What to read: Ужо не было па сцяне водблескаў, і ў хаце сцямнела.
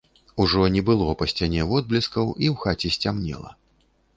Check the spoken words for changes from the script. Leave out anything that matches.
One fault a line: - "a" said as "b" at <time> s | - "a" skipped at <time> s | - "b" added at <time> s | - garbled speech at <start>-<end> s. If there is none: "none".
none